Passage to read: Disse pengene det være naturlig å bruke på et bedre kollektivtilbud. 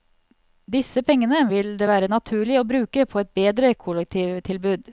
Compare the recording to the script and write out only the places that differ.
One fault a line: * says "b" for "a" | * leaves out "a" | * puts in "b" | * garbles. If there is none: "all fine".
* puts in "vil"